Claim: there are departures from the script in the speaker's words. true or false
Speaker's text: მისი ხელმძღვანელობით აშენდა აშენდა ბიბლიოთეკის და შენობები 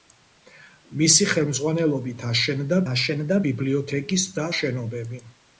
false